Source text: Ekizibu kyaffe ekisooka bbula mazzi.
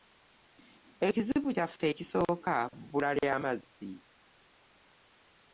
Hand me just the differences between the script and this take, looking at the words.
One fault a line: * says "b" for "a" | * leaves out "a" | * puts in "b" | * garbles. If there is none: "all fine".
* puts in "lya"